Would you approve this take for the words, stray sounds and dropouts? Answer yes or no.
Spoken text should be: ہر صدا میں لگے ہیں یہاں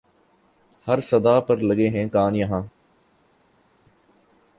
no